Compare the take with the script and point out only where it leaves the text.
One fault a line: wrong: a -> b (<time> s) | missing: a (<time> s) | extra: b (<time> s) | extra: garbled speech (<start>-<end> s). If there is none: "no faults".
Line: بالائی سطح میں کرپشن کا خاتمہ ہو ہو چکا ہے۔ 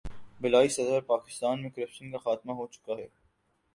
extra: پر پاکستان (0.9 s)
missing: ہو (2.7 s)